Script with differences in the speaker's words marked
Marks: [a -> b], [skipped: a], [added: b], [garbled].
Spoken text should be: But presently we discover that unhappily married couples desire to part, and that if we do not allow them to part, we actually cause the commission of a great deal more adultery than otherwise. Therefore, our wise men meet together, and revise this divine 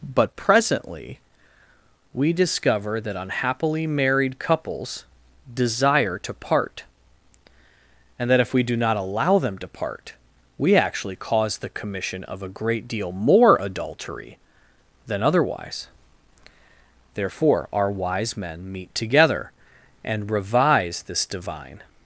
But presently we discover that unhappily married couples desire to part, and that if we do not allow them to part, we actually cause the commission of a great deal more adultery than otherwise. Therefore, our wise men meet together, and revise this divine